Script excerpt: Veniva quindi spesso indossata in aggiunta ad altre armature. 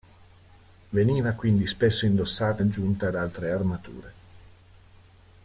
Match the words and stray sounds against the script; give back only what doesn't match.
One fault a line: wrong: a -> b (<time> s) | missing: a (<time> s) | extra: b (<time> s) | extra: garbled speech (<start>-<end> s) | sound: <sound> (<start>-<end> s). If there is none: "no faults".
missing: in (2.6 s)